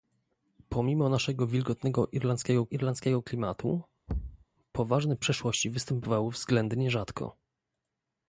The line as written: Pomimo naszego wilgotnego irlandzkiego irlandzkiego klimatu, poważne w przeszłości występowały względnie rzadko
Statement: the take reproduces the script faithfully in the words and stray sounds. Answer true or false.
false